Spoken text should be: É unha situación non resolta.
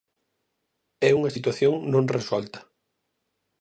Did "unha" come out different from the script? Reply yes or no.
no